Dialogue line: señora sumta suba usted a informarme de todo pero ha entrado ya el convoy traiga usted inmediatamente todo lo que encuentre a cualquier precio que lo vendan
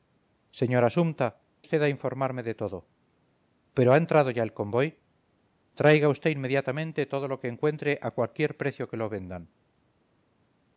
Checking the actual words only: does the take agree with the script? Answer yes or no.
no